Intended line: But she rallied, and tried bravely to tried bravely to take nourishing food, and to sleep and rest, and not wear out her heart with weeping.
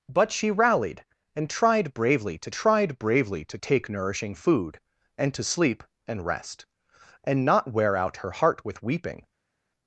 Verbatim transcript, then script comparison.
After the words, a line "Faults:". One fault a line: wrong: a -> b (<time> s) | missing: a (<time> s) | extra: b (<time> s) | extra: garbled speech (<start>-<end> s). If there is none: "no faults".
But she rallied, and tried bravely to tried bravely to take nourishing food, and to sleep and rest, and not wear out her heart with weeping.
Faults:
no faults